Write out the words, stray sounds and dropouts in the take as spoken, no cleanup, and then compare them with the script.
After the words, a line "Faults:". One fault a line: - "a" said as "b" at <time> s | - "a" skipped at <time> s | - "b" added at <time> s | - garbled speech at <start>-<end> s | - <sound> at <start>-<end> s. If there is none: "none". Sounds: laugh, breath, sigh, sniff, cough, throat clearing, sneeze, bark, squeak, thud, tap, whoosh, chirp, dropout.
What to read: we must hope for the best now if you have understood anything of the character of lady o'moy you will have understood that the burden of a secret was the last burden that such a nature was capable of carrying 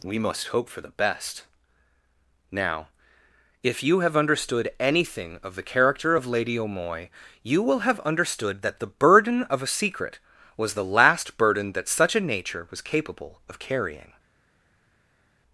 we must hope for the best now if you have understood anything of the character of lady o'moy you will have understood that the burden of a secret was the last burden that such a nature was capable of carrying
Faults:
none